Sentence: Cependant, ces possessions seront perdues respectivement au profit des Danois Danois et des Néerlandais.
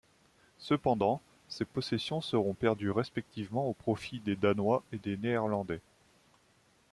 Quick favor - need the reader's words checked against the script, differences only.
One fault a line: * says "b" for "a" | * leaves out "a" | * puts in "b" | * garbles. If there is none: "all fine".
* leaves out "Danois"